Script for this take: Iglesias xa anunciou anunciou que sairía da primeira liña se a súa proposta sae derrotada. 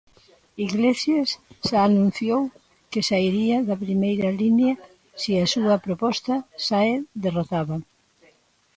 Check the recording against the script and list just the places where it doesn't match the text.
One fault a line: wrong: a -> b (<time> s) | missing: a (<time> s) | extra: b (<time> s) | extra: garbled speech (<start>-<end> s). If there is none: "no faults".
missing: anunciou (2.4 s)